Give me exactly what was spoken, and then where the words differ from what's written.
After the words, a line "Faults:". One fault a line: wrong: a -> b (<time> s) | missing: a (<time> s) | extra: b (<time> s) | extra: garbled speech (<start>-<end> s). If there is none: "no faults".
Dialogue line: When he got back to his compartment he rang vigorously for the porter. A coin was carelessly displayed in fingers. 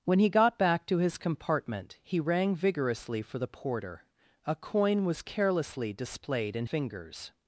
When he got back to his compartment he rang vigorously for the porter. A coin was carelessly displayed in fingers.
Faults:
no faults